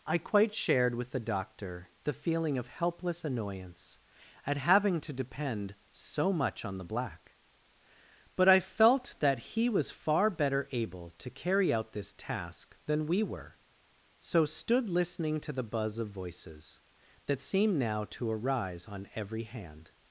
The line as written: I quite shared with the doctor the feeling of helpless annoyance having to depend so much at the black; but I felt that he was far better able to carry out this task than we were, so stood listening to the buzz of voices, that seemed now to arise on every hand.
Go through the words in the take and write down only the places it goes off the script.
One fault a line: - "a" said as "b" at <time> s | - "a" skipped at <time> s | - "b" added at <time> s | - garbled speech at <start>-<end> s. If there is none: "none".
- "at" added at 4.5 s
- "at" said as "on" at 6.7 s